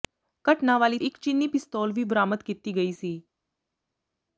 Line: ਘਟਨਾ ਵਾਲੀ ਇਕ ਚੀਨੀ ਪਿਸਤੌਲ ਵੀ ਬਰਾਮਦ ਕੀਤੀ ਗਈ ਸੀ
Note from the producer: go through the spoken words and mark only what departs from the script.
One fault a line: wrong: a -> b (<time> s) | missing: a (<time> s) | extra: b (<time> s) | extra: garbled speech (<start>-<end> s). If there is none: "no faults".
no faults